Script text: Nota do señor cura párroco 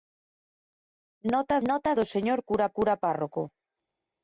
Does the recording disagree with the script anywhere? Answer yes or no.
yes